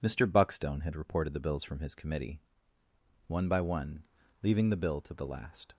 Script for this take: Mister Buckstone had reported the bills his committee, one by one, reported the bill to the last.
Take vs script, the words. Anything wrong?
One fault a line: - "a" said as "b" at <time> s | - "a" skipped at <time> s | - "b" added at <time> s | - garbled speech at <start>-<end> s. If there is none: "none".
- "from" added at 1.6 s
- "reported" said as "leaving" at 4.4 s